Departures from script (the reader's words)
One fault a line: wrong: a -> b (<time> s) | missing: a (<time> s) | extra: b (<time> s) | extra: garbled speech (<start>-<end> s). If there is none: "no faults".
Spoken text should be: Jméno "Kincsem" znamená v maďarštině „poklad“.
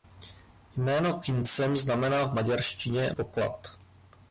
no faults